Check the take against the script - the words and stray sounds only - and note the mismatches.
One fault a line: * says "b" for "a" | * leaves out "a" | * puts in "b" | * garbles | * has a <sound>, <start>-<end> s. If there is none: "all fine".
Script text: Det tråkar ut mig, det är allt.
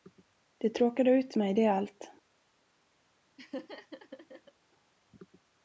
* has a laugh, 3.4-4.5 s